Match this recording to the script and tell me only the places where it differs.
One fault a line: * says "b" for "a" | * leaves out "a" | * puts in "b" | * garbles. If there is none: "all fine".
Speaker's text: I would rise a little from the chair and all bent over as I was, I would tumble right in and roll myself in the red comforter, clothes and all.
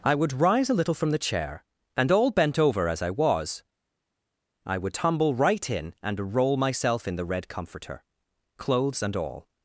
all fine